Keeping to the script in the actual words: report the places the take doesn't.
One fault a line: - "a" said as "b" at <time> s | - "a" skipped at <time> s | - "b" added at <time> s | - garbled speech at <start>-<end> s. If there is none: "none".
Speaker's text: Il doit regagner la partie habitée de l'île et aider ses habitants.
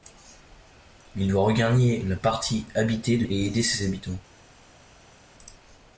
- "l'île" skipped at 3.3 s